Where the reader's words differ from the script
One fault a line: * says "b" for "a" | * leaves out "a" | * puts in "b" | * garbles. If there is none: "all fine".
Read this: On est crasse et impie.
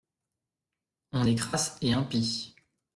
all fine